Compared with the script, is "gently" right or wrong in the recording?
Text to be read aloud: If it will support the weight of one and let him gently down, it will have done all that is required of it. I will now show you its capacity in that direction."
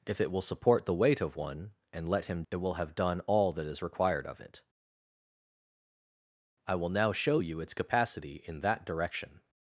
wrong